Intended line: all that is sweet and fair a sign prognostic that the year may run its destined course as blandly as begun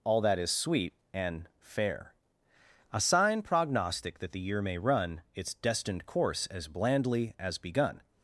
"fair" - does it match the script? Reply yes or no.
yes